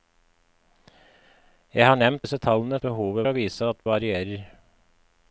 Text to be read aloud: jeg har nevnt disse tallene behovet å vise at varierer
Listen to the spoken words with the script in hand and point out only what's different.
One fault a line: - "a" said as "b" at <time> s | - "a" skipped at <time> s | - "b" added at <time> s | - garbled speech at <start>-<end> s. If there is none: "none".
none